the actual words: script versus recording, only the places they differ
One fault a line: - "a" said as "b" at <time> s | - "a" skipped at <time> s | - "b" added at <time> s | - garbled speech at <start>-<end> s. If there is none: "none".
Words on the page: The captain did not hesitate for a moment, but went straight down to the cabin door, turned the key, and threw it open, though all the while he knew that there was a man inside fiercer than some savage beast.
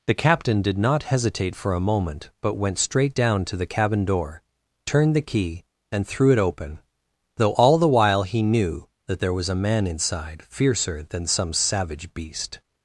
none